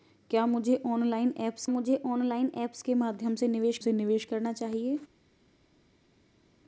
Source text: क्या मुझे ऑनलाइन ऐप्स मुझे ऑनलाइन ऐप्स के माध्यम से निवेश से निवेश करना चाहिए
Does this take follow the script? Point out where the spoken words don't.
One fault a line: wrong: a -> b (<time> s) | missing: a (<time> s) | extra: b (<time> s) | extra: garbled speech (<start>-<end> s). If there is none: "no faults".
no faults